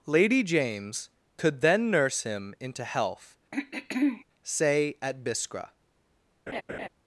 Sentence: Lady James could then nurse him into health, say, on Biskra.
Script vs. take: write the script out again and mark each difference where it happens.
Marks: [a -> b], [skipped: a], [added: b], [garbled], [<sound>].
Lady James could then nurse him into health, [throat clearing] say, [on -> at] Biskra. [laugh]